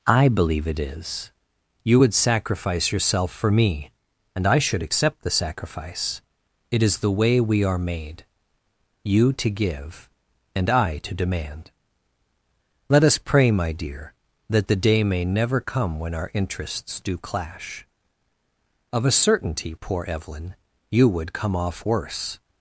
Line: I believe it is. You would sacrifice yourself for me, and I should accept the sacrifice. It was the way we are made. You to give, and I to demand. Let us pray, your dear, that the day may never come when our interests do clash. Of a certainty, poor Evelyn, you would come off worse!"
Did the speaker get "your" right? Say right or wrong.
wrong